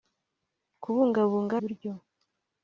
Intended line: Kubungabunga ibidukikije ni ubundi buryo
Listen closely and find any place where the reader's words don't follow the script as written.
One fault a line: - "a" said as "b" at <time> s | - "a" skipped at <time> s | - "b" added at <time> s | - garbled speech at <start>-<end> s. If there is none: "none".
- "ibidukikije ni ubundi" skipped at 1.5 s